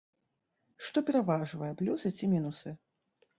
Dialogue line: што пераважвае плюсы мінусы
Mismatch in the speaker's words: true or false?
true